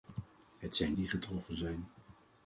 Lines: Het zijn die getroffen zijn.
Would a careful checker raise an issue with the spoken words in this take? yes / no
no